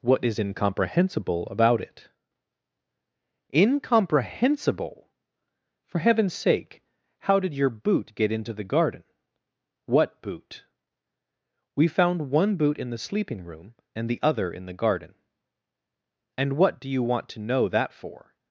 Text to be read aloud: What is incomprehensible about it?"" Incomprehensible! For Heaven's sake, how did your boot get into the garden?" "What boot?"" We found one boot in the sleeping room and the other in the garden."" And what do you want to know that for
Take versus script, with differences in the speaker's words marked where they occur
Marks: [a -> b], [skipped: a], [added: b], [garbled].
What is incomprehensible about it?"" Incomprehensible! For Heaven's sake, how did your boot get into the garden?" "What boot?"" We found one boot in the sleeping room and the other in the garden."" And what do you want to know that for